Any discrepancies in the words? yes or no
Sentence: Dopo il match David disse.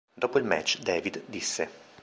no